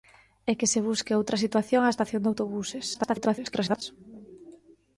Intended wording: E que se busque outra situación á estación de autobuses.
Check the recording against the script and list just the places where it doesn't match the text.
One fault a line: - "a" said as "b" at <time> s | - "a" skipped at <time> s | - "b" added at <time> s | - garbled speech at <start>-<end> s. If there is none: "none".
- garbled speech at 2.9-3.8 s